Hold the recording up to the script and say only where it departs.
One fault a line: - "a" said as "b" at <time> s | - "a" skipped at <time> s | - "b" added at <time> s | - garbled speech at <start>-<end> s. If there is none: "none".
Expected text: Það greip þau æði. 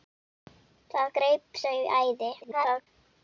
- garbled speech at 2.4-2.9 s